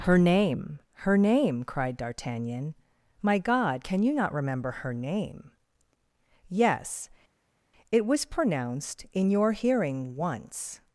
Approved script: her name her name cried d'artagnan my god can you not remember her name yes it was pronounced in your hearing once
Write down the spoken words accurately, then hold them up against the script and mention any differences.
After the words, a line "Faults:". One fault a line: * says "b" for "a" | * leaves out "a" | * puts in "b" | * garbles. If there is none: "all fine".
her name her name cried d'artagnan my god can you not remember her name yes it was pronounced in your hearing once
Faults:
all fine